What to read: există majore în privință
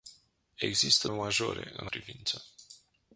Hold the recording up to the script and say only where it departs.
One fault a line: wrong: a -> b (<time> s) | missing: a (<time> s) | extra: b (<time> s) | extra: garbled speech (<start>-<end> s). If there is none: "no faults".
no faults